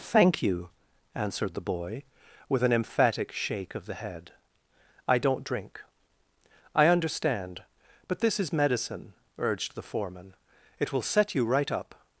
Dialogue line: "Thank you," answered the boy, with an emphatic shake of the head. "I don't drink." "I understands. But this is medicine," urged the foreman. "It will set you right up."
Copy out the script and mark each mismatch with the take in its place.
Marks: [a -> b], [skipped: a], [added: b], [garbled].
"Thank you," answered the boy, with an emphatic shake of the head. "I don't drink." "I [understands. -> understand] But this is medicine," urged the foreman. "It will set you right up."